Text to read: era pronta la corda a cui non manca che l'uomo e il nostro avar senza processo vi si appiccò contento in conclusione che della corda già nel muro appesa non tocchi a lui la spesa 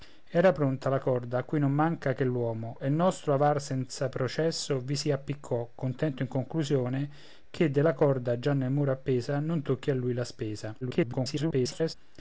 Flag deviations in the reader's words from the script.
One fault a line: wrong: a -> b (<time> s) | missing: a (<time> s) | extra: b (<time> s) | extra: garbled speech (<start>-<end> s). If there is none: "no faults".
extra: garbled speech (10.8-11.9 s)